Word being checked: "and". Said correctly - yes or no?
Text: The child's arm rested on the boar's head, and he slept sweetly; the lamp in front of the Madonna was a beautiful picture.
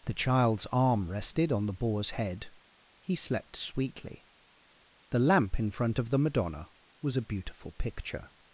no